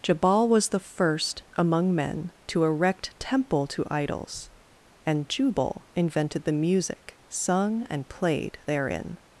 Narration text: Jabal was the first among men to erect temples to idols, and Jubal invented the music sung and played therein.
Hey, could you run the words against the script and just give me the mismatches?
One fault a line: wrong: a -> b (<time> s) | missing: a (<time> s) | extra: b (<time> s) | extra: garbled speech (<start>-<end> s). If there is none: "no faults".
wrong: temples -> temple (3.2 s)